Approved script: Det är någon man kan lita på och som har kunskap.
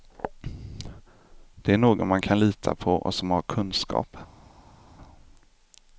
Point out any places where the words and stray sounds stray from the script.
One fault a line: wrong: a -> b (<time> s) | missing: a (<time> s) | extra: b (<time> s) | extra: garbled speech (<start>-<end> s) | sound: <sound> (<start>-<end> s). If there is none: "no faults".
no faults